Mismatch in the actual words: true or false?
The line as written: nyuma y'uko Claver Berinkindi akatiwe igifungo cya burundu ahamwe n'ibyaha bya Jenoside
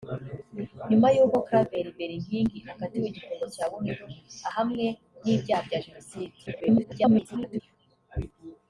true